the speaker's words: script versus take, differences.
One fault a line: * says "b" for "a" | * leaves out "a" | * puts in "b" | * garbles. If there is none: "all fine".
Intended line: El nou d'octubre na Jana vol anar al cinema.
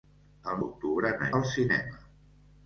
* leaves out "nou"
* leaves out "Jana vol anar"